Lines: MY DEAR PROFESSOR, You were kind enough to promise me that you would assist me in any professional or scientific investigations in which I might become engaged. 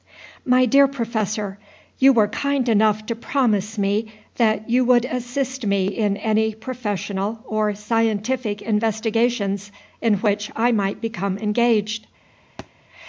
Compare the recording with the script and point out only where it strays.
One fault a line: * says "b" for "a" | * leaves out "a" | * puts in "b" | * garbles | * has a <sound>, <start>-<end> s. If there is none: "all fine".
* has a thud, 12.6-12.7 s